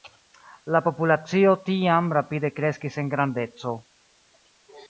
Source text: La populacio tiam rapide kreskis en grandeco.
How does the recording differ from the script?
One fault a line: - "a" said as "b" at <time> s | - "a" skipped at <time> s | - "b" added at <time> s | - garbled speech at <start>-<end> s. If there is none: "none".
none